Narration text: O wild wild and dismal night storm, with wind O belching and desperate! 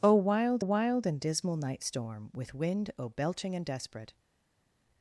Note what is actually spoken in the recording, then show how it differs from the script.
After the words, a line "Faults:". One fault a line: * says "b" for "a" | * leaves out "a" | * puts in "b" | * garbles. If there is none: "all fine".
O wild wild and dismal night storm, with wind O belching and desperate!
Faults:
all fine